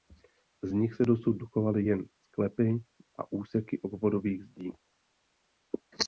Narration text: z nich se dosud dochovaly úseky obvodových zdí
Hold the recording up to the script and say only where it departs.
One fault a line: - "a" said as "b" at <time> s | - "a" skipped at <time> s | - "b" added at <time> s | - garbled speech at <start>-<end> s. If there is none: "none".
- "jen sklepy a" added at 1.8 s